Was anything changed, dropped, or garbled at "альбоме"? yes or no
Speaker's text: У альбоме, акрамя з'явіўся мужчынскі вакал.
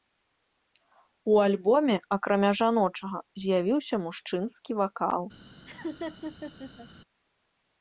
no